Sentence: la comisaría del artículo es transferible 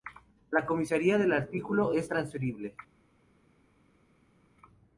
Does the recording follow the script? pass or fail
pass